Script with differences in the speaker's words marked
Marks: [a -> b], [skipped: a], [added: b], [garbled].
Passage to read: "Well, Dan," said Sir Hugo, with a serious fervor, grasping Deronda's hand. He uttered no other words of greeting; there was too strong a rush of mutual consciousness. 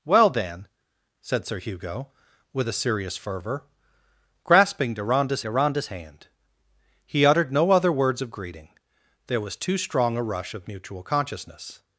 "Well, Dan," said Sir Hugo, with a serious fervor, grasping Deronda's [added: Deronda's] hand. He uttered no other words of greeting; there was too strong a rush of mutual consciousness.